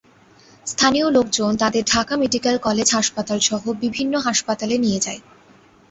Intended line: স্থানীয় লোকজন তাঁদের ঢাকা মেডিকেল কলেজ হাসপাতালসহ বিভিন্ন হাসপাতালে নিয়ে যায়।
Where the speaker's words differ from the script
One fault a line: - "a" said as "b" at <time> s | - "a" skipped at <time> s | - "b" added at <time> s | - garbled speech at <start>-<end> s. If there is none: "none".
none